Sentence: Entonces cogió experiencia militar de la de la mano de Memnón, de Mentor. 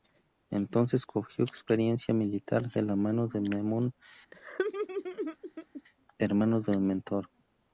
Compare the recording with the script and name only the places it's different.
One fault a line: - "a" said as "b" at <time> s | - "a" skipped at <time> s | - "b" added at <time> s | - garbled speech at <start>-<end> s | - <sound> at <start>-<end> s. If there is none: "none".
- "de la" skipped at 3.0 s
- laugh at 4.3-5.8 s
- "hermano" added at 6.2 s